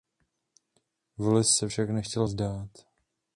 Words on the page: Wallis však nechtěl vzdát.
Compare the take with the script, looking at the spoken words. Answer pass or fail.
fail